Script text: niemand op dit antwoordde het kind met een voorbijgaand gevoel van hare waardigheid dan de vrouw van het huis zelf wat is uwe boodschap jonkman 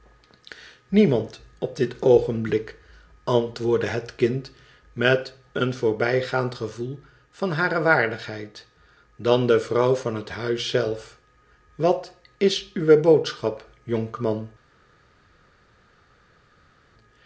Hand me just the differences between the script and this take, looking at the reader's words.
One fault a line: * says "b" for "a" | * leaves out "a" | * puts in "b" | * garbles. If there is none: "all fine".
* puts in "oogenblik"